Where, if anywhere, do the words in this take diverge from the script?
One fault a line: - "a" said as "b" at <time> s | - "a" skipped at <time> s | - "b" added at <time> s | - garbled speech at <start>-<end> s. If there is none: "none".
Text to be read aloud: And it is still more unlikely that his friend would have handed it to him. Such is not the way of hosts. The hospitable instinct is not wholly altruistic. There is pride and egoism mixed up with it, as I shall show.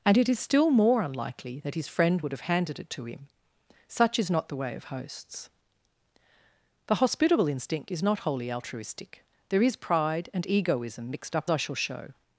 - "with it as" skipped at 11.5 s